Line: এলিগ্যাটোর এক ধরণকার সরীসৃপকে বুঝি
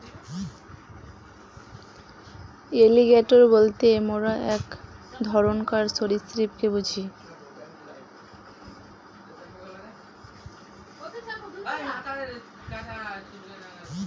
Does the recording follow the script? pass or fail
fail